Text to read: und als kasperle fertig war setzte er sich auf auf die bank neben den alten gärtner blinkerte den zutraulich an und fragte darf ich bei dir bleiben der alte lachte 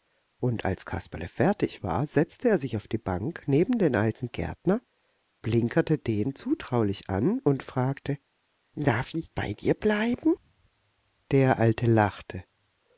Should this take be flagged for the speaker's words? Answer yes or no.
yes